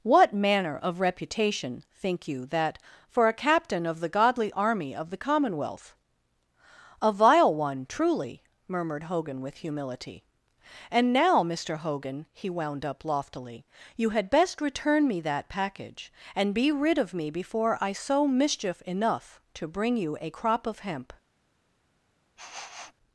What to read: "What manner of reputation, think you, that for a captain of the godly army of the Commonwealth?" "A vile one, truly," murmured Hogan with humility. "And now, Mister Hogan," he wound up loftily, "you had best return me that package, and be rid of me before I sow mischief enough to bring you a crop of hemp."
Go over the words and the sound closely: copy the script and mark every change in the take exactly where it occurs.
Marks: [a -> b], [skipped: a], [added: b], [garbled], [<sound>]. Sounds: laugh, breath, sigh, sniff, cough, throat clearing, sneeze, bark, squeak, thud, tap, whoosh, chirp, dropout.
"What manner of reputation, think you, that for a captain of the godly army of the Commonwealth?" "A vile one, truly," murmured Hogan with humility. "And now, Mister Hogan," he wound up loftily, "you had best return me that package, and be rid of me before I sow mischief enough to bring you a crop of hemp." [sniff]